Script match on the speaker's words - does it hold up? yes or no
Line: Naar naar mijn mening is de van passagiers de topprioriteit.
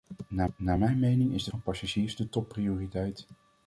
yes